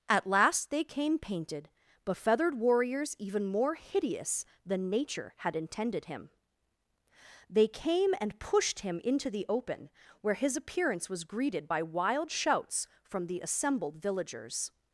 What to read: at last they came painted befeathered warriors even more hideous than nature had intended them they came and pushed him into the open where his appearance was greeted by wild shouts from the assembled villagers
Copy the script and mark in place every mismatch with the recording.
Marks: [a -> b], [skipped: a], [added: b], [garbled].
at last they came painted befeathered warriors even more hideous than nature had intended [them -> him] they came and pushed him into the open where his appearance was greeted by wild shouts from the assembled villagers